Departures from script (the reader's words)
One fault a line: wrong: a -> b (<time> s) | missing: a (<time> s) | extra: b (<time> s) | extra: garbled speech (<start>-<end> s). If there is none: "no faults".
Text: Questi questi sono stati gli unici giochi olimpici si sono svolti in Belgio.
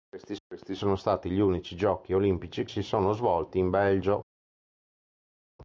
no faults